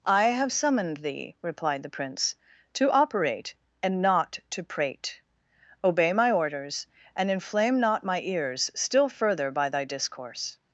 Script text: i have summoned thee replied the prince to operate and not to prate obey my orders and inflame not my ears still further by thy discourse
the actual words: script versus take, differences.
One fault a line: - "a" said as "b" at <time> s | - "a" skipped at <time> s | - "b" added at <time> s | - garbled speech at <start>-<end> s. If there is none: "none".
none